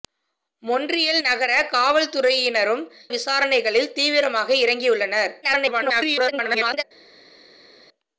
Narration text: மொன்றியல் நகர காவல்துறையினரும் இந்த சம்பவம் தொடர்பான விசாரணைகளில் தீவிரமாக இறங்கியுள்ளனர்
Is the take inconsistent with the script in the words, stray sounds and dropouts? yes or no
yes